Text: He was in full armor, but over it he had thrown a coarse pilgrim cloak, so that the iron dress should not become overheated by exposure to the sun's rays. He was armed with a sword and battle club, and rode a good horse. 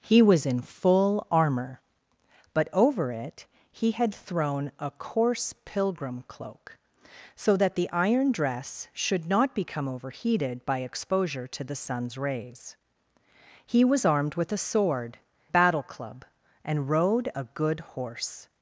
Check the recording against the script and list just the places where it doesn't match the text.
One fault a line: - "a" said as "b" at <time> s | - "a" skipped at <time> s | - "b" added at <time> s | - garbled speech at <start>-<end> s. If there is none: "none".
- "and" skipped at 15.2 s